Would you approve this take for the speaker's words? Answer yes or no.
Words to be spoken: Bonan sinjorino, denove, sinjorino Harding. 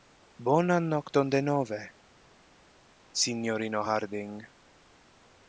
no